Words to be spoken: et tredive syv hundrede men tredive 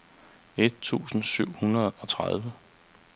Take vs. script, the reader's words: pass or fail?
fail